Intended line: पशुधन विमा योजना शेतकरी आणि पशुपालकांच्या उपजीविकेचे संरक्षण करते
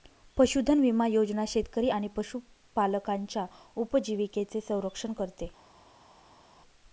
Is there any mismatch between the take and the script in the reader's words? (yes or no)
no